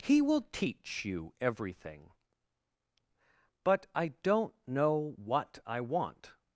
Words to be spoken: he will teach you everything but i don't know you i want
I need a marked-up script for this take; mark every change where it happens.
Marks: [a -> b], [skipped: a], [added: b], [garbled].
he will teach you everything but i don't know [you -> what] i want